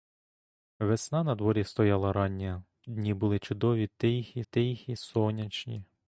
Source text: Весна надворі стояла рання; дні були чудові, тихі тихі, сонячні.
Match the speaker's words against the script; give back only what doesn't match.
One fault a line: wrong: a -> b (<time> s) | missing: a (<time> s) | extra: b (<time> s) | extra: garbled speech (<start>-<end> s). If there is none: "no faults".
no faults